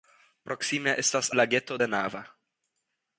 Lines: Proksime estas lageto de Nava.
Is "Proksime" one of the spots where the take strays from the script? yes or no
no